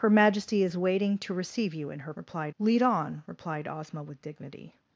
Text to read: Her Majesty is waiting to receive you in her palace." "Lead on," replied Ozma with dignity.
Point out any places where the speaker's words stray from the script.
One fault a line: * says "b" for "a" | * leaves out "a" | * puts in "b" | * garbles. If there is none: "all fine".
* says "replied" for "palace"